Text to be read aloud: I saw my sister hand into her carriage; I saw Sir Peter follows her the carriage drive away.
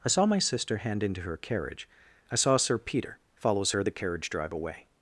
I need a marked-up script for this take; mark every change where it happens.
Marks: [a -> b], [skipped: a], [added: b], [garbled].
I saw my sister hand into her carriage; I saw Sir Peter follows her the carriage drive away.